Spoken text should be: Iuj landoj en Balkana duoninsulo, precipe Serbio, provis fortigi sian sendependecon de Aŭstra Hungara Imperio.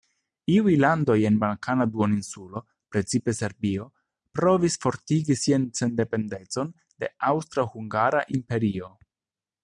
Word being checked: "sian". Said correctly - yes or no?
yes